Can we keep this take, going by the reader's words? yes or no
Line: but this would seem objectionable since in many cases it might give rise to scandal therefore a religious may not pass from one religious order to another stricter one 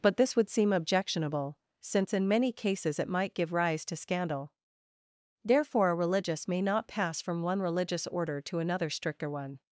yes